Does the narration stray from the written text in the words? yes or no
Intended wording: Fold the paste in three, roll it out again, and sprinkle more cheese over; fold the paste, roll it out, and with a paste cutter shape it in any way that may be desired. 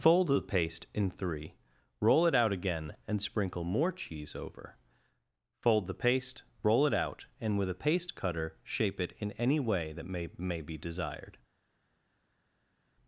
yes